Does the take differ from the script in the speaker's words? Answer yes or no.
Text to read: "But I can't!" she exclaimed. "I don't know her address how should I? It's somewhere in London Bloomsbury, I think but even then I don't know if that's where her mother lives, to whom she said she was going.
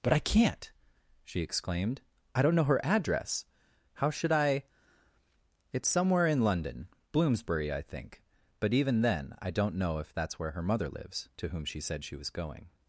no